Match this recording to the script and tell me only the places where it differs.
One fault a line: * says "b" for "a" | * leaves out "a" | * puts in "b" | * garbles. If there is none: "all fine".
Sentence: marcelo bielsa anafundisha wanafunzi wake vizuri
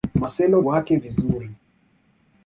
* leaves out "bielsa anafundisha wanafunzi"